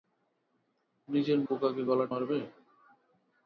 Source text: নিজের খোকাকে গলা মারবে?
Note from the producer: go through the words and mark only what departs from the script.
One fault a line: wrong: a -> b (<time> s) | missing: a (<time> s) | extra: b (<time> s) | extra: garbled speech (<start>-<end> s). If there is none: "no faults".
no faults